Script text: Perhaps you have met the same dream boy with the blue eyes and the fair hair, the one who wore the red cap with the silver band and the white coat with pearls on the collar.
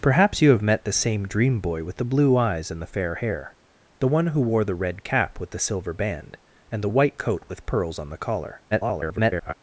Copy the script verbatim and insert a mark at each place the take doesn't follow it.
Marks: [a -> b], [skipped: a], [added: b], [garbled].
Perhaps you have met the same dream boy with the blue eyes and the fair hair, the one who wore the red cap with the silver band and the white coat with pearls on the collar. [garbled]